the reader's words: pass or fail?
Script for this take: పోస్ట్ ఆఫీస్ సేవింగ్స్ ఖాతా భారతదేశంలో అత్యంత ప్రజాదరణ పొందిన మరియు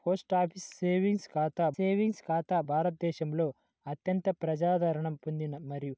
fail